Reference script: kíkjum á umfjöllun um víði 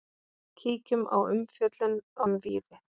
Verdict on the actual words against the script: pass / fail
pass